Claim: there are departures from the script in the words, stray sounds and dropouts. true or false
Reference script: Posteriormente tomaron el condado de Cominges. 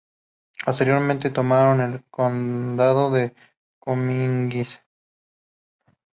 false